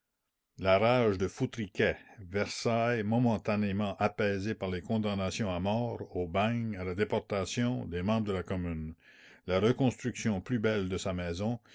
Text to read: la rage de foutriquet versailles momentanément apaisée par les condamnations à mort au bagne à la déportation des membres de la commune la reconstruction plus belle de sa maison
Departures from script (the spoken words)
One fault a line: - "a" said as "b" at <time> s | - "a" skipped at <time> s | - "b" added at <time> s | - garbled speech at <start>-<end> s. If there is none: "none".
none